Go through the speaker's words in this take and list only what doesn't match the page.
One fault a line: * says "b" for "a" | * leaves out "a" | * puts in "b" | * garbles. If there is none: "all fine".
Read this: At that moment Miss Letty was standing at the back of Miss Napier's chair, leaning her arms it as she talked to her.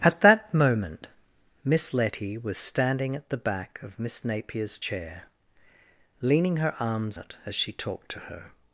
all fine